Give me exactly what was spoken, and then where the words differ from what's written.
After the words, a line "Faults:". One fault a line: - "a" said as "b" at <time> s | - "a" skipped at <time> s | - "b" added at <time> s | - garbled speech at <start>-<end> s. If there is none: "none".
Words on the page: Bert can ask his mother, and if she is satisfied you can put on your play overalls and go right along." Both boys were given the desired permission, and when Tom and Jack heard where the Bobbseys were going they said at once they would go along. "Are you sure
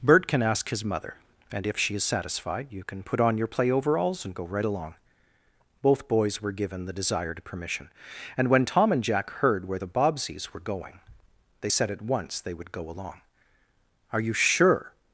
Bert can ask his mother, and if she is satisfied you can put on your play overalls and go right along." Both boys were given the desired permission, and when Tom and Jack heard where the Bobbseys were going they said at once they would go along. "Are you sure
Faults:
none